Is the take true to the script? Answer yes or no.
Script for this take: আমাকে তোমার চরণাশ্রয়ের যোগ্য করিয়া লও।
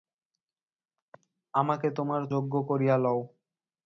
no